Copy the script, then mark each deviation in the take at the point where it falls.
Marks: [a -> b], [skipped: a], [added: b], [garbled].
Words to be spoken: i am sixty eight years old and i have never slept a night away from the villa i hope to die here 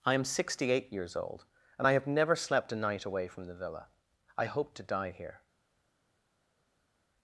i am sixty eight years old and i have never slept a night away from the villa i hope to die here